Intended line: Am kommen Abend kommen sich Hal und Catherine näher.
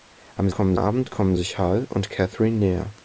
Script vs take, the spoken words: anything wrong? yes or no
no